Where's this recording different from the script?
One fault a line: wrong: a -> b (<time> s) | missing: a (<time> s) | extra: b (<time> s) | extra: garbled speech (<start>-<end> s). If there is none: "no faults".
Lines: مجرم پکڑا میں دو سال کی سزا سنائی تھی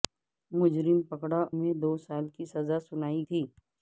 no faults